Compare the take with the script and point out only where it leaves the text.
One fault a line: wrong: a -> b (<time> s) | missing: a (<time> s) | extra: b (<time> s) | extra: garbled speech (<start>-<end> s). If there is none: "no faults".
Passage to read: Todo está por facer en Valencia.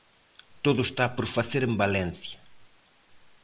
no faults